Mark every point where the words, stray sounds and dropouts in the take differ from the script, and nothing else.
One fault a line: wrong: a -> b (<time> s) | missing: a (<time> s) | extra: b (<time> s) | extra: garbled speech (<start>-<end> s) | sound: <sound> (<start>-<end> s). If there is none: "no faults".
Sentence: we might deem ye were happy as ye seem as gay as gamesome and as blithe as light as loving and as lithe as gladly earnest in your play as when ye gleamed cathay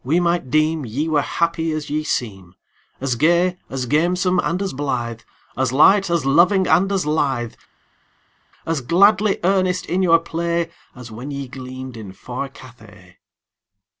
extra: in far (12.0 s)